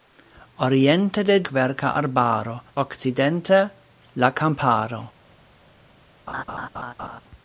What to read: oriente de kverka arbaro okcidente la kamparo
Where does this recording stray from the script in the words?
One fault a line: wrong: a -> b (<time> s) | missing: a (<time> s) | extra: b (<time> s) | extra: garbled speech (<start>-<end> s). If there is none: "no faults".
no faults